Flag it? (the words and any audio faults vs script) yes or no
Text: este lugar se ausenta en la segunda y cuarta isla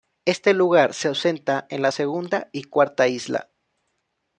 no